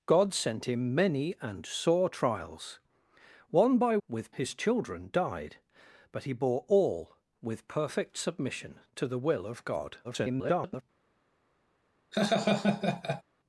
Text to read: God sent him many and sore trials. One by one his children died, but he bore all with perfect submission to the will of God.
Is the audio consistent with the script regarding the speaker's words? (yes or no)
no